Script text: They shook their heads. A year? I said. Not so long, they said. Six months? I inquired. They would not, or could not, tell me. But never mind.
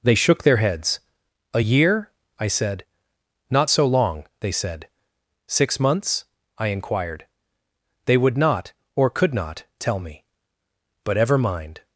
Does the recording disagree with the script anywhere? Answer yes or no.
yes